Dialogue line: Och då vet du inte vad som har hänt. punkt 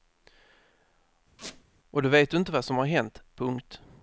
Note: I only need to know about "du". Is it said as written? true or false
true